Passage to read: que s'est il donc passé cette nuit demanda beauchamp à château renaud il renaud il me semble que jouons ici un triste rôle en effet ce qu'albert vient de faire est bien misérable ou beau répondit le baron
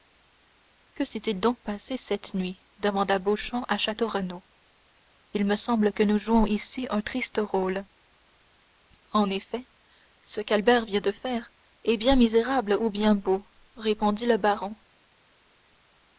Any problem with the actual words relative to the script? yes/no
yes